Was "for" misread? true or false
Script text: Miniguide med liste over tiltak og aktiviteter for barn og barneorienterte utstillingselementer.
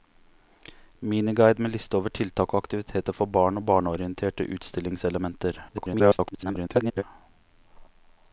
false